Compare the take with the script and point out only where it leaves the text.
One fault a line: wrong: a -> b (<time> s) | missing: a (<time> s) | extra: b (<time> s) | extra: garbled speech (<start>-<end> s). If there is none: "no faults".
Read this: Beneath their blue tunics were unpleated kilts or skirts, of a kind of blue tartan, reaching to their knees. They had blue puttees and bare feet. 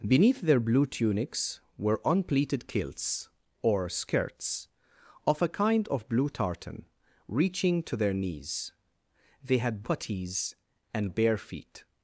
missing: blue (9.8 s)